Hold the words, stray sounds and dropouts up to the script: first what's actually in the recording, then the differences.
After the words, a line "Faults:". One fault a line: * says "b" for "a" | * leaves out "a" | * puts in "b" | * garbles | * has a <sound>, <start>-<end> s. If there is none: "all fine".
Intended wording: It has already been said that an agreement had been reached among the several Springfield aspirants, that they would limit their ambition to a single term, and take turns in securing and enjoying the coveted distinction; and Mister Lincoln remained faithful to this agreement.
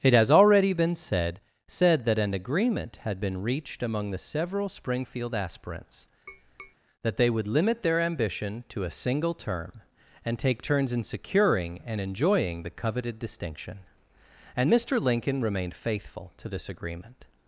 It has already been said said that an agreement had been reached among the several Springfield aspirants, that they would limit their ambition to a single term, and take turns in securing and enjoying the coveted distinction; and Mister Lincoln remained faithful to this agreement.
Faults:
* puts in "said"
* has a tap, 6.3-6.8 s